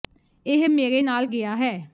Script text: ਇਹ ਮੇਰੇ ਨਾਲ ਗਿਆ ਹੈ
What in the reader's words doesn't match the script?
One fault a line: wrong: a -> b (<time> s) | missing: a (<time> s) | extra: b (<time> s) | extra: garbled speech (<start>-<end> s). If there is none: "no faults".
no faults